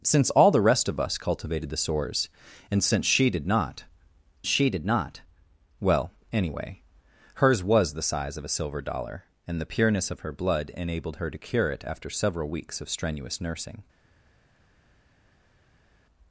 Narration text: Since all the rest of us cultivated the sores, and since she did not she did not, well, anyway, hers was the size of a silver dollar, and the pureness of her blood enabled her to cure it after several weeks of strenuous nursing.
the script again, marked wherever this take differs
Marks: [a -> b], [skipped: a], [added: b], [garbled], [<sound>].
Since all the rest of us cultivated the sores, and since she did not she did not, well, anyway, hers was the size of a silver dollar, and the pureness of her blood enabled her to cure it after several weeks of strenuous nursing.